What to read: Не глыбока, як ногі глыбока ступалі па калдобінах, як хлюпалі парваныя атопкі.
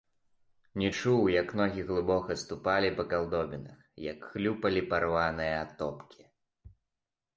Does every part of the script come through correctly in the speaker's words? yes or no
no